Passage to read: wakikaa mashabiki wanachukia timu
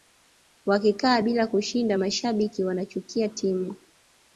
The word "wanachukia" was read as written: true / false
true